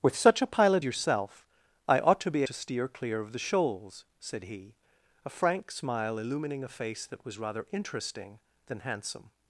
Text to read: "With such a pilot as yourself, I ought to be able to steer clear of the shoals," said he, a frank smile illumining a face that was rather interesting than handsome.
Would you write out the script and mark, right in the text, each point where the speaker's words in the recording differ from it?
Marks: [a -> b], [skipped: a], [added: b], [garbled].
"With such a pilot [skipped: as] yourself, I ought to be [skipped: able] to steer clear of the shoals," said he, a frank smile illumining a face that was rather interesting than handsome.